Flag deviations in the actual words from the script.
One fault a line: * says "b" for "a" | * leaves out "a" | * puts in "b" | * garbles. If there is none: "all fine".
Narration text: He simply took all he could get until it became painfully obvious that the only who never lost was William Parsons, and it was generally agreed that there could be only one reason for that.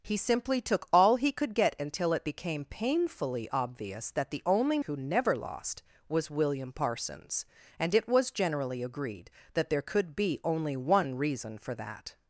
all fine